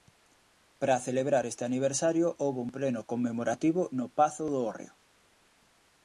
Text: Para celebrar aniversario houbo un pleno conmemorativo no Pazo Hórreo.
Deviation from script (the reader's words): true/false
true